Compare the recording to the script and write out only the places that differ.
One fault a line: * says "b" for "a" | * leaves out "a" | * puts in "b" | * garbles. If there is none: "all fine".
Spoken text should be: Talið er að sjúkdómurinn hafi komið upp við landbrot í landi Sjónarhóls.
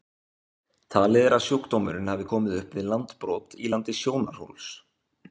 all fine